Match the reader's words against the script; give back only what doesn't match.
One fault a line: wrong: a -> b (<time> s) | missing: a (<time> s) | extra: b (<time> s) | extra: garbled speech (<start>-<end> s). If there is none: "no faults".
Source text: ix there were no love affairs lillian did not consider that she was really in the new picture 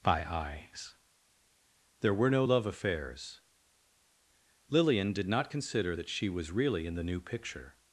wrong: ix -> by eyes (0.0 s)